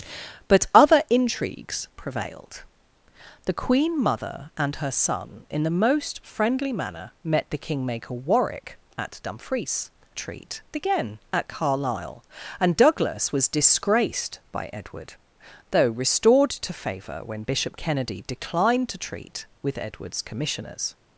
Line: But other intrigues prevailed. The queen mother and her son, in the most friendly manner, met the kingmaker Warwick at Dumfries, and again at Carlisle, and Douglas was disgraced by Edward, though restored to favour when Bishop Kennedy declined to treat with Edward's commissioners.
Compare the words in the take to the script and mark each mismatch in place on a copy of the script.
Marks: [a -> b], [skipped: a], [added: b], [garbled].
But other intrigues prevailed. The queen mother and her son, in the most friendly manner, met the kingmaker Warwick at Dumfries, [and -> treat] again at Carlisle, and Douglas was disgraced by Edward, though restored to favour when Bishop Kennedy declined to treat with Edward's commissioners.